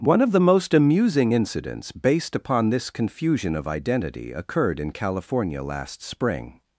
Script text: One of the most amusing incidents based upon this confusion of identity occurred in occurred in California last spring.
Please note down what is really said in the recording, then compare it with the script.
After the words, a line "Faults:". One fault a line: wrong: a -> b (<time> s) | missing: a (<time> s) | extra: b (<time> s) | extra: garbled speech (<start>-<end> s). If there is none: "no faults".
One of the most amusing incidents based upon this confusion of identity occurred in California last spring.
Faults:
missing: occurred in (4.9 s)